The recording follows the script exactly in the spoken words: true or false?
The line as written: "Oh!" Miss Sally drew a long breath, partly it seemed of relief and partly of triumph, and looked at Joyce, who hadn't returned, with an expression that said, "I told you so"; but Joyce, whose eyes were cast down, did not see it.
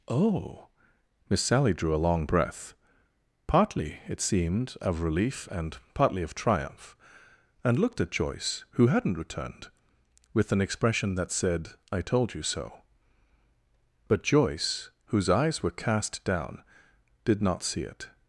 true